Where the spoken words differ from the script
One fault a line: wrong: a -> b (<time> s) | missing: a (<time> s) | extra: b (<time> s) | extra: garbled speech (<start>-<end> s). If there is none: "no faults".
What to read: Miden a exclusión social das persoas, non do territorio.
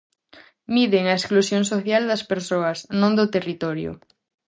no faults